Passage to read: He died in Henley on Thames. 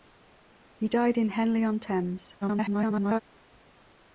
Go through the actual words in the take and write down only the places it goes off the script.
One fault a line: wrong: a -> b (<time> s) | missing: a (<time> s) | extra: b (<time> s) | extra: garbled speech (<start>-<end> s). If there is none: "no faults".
extra: garbled speech (2.4-3.2 s)